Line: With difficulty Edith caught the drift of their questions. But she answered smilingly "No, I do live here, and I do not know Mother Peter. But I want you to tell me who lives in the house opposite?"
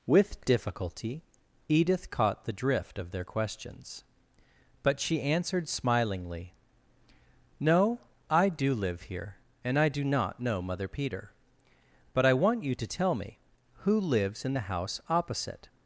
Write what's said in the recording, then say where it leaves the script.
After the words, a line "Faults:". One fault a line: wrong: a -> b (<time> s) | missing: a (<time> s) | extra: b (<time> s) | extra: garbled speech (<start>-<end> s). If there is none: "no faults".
With difficulty Edith caught the drift of their questions. But she answered smilingly "No, I do live here, and I do not know Mother Peter. But I want you to tell me who lives in the house opposite?"
Faults:
no faults